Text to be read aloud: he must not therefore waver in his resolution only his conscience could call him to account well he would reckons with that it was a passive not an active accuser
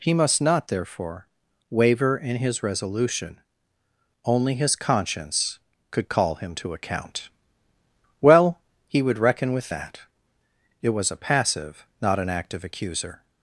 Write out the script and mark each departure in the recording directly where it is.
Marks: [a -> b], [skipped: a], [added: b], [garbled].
he must not therefore waver in his resolution only his conscience could call him to account well he would [reckons -> reckon] with that it was a passive not an active accuser